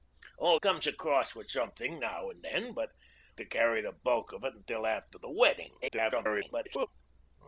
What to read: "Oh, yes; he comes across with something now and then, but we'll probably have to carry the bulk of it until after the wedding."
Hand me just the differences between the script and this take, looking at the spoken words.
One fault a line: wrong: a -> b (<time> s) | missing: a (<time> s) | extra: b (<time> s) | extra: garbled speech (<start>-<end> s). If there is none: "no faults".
missing: yes he (0.6 s)
missing: we'll probably have (2.9 s)
extra: garbled speech (5.8-6.9 s)